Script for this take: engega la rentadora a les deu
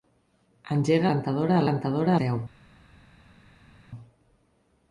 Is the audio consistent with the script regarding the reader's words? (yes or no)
no